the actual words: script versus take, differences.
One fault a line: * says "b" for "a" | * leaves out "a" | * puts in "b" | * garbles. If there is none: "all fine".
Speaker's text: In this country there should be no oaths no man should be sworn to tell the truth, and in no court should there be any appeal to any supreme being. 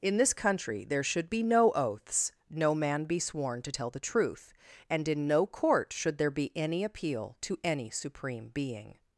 * leaves out "should"